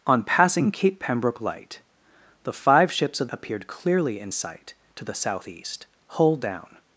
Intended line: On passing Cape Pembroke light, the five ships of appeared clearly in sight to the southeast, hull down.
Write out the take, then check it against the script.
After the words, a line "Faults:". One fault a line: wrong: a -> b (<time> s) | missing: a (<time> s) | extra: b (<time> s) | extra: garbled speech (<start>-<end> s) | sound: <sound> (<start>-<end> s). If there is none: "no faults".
On passing Cape Pembroke light, the five ships of appeared clearly in sight to the southeast, hull down.
Faults:
no faults